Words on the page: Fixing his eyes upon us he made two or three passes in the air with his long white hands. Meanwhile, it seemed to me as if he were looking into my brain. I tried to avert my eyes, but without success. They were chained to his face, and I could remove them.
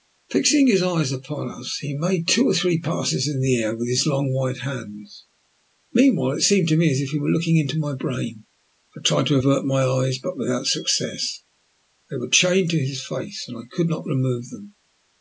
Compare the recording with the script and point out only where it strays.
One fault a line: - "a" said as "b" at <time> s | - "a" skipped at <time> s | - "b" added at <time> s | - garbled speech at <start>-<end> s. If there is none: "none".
- "not" added at 13.9 s